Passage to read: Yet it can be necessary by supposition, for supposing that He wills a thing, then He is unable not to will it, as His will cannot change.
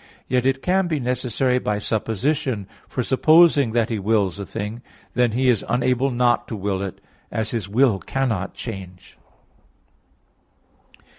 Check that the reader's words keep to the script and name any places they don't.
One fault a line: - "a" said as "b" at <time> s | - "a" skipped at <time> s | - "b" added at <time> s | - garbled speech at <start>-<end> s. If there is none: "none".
none